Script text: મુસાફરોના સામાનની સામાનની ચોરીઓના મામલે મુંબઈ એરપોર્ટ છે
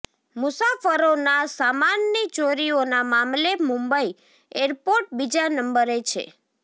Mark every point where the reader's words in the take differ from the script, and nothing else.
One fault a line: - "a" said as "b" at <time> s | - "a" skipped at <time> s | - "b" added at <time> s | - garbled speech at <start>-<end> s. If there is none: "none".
- "સામાનની" skipped at 2.2 s
- "બીજા નંબરે" added at 5.2 s